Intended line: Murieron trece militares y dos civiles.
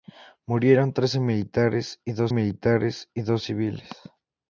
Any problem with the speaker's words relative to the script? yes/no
yes